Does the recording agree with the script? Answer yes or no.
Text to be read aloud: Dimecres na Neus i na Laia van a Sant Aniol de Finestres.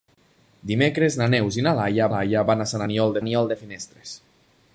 no